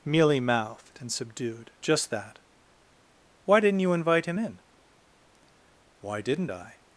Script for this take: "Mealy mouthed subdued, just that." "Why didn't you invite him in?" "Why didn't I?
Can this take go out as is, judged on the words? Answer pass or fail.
fail